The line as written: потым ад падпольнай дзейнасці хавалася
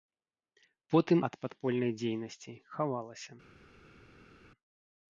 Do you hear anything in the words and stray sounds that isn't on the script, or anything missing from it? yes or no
no